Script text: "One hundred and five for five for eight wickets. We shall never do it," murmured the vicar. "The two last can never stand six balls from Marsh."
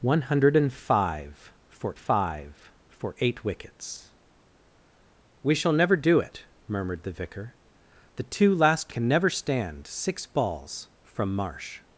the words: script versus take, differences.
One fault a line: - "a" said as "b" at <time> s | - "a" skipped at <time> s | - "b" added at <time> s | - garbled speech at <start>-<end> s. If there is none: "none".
none